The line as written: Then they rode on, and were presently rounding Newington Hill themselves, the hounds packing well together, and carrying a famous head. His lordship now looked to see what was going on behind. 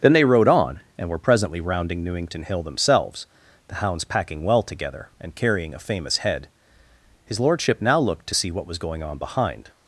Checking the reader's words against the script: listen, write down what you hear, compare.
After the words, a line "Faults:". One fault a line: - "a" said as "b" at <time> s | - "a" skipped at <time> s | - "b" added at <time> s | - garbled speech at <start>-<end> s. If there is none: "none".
Then they rode on, and were presently rounding Newington Hill themselves, the hounds packing well together, and carrying a famous head. His lordship now looked to see what was going on behind.
Faults:
none